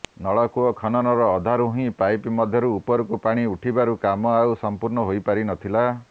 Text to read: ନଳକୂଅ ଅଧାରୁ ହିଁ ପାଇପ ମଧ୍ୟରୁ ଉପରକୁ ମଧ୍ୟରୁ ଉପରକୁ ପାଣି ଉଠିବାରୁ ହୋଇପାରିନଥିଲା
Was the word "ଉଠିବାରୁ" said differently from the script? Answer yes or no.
yes